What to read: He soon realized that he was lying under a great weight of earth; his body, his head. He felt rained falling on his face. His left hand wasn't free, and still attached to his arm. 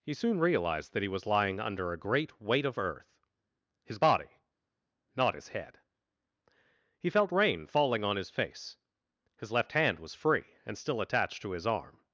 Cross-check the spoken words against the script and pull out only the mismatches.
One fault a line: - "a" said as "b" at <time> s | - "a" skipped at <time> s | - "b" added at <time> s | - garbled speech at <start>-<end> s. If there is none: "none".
- "not" added at 5.2 s
- "rained" said as "rain" at 7.3 s
- "wasn't" said as "was" at 10.0 s